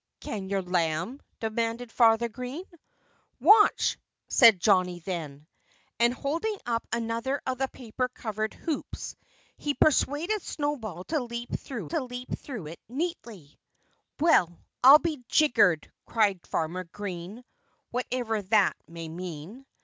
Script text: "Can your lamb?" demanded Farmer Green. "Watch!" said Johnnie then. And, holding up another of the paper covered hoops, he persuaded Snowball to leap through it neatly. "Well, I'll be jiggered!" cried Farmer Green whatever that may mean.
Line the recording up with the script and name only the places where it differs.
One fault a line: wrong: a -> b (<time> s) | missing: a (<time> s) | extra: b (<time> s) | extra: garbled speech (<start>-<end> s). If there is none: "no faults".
extra: to leap through (11.8 s)